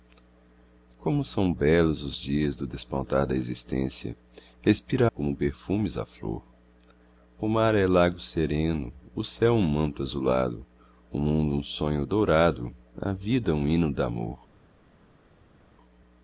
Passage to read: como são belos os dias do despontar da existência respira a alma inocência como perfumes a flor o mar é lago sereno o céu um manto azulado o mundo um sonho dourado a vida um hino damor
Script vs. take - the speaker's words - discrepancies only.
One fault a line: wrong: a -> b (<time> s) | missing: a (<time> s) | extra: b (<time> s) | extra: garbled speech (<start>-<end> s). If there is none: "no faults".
missing: alma inocência (5.1 s)